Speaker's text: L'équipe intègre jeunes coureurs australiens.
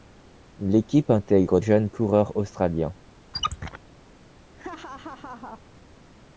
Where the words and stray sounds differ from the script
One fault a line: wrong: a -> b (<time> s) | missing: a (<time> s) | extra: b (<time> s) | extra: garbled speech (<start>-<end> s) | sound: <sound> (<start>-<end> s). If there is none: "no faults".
sound: squeak (3.3-3.8 s)
sound: laugh (4.6-5.6 s)